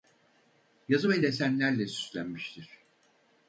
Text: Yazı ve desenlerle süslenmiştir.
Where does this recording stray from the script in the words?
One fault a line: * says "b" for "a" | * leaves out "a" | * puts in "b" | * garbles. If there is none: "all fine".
all fine